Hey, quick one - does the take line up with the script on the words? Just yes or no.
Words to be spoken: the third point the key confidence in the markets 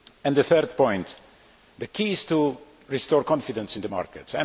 no